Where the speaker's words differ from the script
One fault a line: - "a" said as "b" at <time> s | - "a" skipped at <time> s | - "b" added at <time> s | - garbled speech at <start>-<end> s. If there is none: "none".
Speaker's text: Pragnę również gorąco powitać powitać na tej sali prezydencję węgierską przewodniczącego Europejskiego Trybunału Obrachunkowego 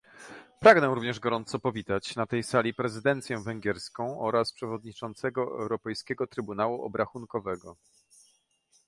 - "powitać" skipped at 2.1 s
- "oraz" added at 4.2 s